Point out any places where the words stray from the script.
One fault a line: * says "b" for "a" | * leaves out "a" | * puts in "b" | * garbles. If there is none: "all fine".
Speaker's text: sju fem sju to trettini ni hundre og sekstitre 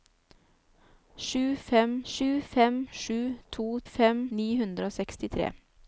* puts in "fem sju"
* says "fem" for "trettini"